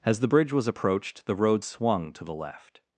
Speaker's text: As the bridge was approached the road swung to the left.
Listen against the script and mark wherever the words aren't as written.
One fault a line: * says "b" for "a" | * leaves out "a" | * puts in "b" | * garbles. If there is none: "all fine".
all fine